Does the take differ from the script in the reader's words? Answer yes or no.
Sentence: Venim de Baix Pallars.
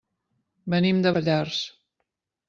yes